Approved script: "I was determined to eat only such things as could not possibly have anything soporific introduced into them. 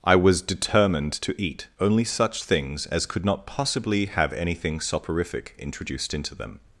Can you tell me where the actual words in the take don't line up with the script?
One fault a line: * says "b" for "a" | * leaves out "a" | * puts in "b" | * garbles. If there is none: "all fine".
all fine